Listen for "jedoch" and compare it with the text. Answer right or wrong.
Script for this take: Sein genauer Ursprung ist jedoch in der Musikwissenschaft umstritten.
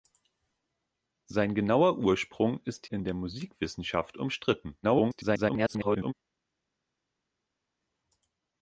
wrong